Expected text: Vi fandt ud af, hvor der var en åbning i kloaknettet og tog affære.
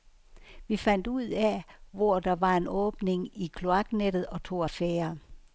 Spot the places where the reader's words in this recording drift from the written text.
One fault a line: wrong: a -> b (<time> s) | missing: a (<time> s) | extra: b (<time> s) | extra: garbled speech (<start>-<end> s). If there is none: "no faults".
no faults